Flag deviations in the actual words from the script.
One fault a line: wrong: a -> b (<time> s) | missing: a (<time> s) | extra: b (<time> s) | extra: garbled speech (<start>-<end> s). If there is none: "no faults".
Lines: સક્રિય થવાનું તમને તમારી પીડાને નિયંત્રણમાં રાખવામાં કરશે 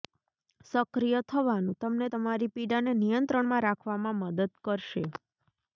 extra: મદદ (4.2 s)